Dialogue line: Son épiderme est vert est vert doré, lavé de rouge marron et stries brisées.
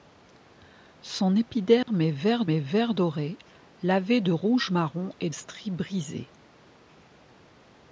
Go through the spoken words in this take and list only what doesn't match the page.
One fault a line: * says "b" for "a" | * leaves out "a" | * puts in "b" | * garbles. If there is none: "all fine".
all fine